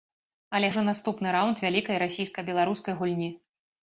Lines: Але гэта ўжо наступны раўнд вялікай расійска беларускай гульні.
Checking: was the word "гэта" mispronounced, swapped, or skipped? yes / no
yes